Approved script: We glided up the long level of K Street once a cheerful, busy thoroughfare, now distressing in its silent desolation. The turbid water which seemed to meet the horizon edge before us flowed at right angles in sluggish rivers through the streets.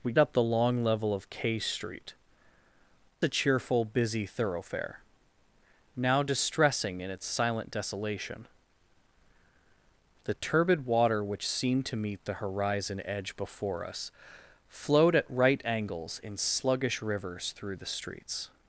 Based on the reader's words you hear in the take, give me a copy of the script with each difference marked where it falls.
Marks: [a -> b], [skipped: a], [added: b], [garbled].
We [skipped: glided] up the long level of K Street [skipped: once] a cheerful, busy thoroughfare, now distressing in its silent desolation. The turbid water which seemed to meet the horizon edge before us flowed at right angles in sluggish rivers through the streets.